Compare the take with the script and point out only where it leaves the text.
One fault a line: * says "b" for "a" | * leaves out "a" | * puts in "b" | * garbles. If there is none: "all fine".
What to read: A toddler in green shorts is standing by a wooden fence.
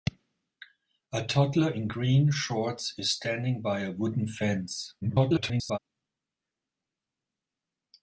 * garbles